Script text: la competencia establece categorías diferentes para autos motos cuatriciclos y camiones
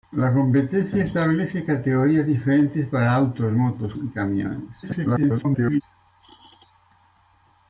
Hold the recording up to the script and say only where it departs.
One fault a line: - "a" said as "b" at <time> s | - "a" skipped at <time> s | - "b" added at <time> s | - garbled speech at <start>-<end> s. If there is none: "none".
- "cuatriciclos" skipped at 3.9 s
- garbled speech at 4.8-5.8 s